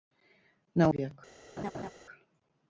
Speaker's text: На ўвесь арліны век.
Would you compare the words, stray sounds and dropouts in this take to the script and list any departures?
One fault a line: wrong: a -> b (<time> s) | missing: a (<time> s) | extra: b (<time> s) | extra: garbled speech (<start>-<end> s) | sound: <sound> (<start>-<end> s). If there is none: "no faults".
missing: ўвесь арліны (0.9 s)
sound: laugh (1.6-1.9 s)